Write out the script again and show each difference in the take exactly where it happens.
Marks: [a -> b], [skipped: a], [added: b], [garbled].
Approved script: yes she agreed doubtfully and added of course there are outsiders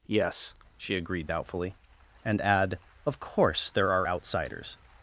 yes she agreed doubtfully and [added -> add] of course there are outsiders